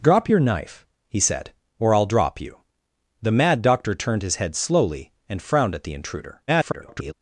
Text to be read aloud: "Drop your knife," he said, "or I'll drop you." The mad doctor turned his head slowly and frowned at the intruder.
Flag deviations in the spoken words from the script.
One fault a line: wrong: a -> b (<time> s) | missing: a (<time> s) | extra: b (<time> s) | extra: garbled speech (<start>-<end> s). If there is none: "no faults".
extra: garbled speech (6.5-7.1 s)